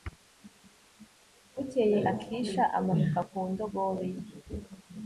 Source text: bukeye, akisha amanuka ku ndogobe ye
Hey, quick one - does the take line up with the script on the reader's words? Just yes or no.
yes